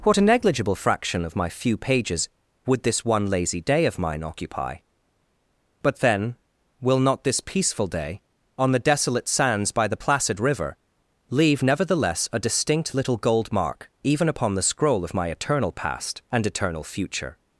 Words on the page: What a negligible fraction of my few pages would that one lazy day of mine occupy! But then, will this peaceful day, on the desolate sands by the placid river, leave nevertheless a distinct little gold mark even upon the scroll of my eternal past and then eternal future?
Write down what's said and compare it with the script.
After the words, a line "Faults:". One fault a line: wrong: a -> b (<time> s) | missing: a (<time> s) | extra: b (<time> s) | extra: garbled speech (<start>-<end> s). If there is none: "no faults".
What a negligible fraction of my few pages would this one lazy day of mine occupy! But then, will not this peaceful day, on the desolate sands by the placid river, leave nevertheless a distinct little gold mark even upon the scroll of my eternal past and eternal future?
Faults:
wrong: that -> this (2.8 s)
extra: not (7.0 s)
missing: then (16.5 s)